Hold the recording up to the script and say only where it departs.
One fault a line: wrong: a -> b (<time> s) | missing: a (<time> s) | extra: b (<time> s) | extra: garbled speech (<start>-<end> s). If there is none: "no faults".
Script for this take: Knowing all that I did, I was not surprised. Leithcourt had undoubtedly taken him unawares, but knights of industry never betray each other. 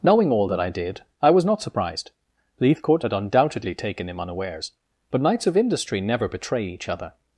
no faults